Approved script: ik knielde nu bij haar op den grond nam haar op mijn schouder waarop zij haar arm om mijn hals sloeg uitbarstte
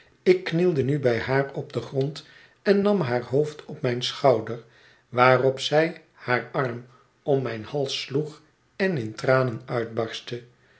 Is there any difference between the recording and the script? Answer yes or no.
yes